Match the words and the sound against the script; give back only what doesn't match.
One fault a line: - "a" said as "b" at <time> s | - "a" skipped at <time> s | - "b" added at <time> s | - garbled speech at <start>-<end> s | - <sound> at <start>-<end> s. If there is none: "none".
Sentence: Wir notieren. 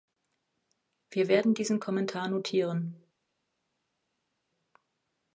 - "werden diesen Kommentar" added at 1.3 s